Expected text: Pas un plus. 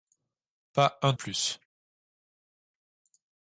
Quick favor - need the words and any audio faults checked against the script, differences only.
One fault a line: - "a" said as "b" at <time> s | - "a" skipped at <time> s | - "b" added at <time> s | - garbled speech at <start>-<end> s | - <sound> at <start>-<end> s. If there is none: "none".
none